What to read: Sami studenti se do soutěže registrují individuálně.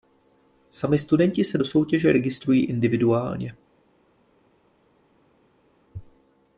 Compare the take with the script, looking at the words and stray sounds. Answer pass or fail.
pass